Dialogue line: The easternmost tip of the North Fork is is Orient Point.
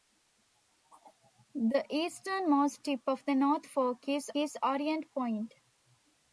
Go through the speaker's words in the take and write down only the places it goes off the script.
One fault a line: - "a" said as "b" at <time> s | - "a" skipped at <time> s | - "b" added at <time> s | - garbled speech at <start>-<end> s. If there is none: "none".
none